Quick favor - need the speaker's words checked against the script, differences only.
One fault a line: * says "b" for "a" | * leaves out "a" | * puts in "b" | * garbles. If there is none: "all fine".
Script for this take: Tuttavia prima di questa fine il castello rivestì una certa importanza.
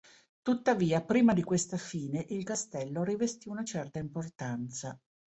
all fine